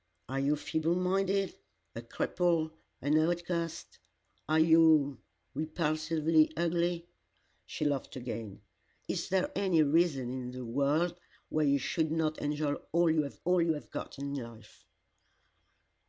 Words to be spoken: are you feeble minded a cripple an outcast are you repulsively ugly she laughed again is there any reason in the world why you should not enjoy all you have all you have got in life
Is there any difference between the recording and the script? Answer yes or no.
no